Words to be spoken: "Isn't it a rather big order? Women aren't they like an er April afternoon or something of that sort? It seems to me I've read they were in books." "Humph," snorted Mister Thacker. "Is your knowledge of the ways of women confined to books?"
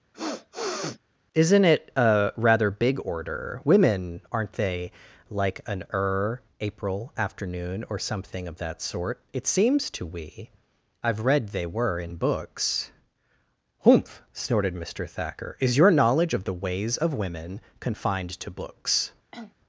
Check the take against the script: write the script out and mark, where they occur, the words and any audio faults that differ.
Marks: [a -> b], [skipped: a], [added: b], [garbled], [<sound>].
[sniff] "Isn't it a rather big order? Women aren't they like an er April afternoon or something of that sort? It seems to [me -> we] I've read they were in books." "Humph," snorted Mister Thacker. "Is your knowledge of the ways of women confined to books?" [cough]